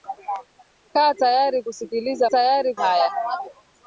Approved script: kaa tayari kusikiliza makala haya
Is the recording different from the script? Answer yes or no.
yes